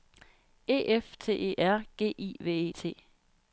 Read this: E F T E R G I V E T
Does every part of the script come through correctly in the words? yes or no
yes